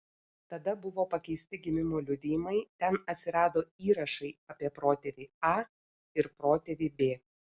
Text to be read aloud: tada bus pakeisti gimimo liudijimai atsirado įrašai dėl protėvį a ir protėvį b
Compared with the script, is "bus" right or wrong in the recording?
wrong